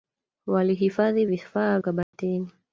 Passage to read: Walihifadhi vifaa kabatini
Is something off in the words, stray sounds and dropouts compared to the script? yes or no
yes